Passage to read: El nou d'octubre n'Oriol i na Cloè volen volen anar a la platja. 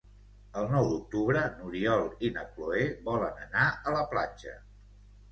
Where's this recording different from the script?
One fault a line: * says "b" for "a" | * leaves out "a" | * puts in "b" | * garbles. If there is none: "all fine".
* leaves out "volen"